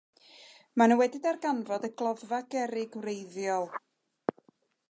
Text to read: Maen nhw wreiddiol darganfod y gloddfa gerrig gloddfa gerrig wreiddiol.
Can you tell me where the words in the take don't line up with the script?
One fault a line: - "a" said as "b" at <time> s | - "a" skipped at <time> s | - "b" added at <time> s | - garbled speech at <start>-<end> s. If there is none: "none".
- "wreiddiol" said as "wedi" at 1.0 s
- "gloddfa gerrig" skipped at 3.0 s